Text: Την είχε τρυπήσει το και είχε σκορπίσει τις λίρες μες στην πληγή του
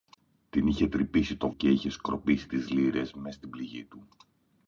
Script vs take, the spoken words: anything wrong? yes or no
no